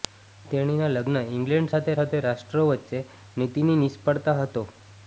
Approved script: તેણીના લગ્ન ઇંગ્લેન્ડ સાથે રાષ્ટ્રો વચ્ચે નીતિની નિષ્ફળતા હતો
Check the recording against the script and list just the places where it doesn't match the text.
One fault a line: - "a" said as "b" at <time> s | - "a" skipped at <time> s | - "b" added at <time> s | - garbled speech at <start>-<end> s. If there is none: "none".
- "સાથે" added at 2.0 s